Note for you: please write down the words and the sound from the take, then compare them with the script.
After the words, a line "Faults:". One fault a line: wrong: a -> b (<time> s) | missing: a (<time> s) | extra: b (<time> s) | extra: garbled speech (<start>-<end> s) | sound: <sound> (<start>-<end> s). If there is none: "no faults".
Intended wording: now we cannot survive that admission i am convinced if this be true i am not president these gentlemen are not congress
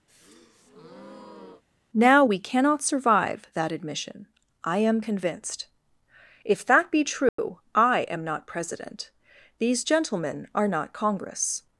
now we cannot survive that admission i am convinced if that be true i am not president these gentlemen are not congress
Faults:
sound: breath (0.1-1.6 s)
wrong: this -> that (6.7 s)
sound: dropout (7.3-7.4 s)